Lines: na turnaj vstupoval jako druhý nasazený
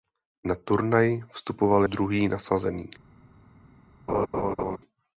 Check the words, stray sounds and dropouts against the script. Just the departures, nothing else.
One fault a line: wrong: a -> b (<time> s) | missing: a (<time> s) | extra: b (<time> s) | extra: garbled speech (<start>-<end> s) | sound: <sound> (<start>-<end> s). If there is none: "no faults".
missing: jako (1.8 s)
sound: laugh (4.1-4.8 s)